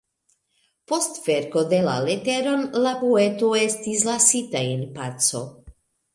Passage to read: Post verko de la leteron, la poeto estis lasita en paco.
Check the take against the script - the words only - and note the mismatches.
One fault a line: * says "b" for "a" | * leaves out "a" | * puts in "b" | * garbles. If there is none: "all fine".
all fine